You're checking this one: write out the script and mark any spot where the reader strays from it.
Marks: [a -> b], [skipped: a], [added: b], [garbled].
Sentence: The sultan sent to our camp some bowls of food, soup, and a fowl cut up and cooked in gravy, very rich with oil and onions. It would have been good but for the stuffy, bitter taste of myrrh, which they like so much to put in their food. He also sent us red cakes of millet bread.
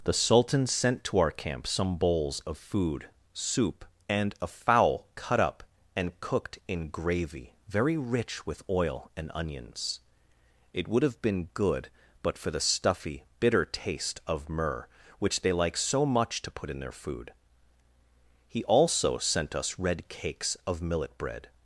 The sultan sent to our camp some bowls of food, soup, and a fowl cut up and cooked in gravy, very rich with oil and onions. It would have been good but for the stuffy, bitter taste of myrrh, which they like so much to put in their food. He also sent us red cakes of millet bread.